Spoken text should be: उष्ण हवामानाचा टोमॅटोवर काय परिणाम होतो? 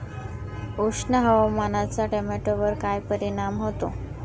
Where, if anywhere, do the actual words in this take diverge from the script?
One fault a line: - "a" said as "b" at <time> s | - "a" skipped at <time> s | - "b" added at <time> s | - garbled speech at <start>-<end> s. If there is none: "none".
none